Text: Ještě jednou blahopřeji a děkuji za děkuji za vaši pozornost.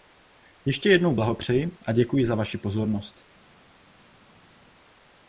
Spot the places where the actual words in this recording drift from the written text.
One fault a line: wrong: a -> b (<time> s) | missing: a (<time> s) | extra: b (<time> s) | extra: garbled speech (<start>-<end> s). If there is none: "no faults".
missing: děkuji za (2.3 s)